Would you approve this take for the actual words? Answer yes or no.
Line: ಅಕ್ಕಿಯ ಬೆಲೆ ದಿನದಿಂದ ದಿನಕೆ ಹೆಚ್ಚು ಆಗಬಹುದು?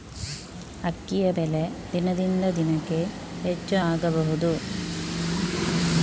yes